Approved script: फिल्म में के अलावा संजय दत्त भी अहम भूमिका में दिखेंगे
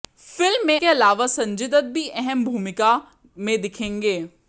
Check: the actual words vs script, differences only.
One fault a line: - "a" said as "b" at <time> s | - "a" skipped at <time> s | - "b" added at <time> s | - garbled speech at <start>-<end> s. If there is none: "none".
none